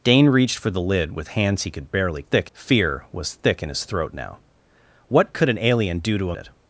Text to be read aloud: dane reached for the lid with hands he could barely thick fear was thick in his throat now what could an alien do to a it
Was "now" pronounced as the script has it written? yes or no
yes